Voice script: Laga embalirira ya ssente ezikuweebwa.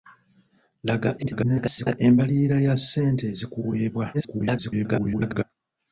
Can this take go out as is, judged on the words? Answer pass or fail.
fail